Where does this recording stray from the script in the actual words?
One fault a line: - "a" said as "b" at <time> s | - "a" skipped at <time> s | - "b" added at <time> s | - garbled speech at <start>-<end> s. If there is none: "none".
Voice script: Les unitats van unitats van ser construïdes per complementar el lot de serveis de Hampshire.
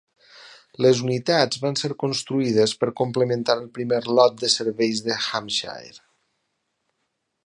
- "unitats van" skipped at 1.8 s
- "primer" added at 3.8 s